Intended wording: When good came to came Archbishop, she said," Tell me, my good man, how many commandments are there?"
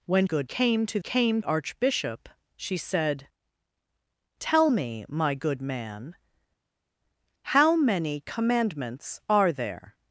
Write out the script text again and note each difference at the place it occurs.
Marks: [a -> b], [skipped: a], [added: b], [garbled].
When good came to came Archbishop, she said," Tell me, my good man, how many commandments are there?"